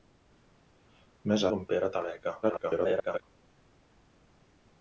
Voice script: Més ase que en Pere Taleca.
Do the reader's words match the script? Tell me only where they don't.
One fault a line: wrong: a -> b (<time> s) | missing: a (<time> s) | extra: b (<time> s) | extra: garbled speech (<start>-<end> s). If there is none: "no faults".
missing: ase (1.4 s)
extra: garbled speech (2.4-3.2 s)